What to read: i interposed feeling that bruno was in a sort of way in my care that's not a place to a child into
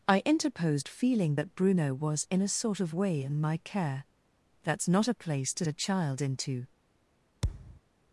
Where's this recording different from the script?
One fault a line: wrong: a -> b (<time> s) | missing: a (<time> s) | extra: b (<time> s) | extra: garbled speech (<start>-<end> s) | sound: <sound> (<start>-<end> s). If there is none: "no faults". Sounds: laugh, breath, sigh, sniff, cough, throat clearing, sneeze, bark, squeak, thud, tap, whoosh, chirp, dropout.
sound: thud (7.4-7.8 s)